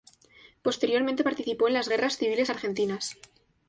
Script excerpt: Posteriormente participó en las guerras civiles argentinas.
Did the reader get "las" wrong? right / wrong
right